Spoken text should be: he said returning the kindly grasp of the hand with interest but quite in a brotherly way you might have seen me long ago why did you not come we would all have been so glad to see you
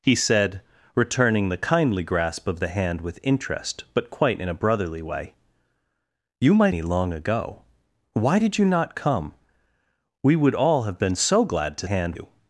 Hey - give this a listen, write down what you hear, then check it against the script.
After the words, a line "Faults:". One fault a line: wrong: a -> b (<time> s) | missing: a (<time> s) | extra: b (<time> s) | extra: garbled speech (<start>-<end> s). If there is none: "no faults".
he said returning the kindly grasp of the hand with interest but quite in a brotherly way you might me long ago why did you not come we would all have been so glad to hand you
Faults:
missing: have seen (6.7 s)
wrong: see -> hand (11.8 s)